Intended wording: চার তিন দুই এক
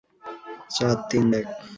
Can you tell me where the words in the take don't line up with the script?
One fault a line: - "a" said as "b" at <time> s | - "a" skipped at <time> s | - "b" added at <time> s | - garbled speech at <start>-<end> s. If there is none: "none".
- "দুই" skipped at 1.2 s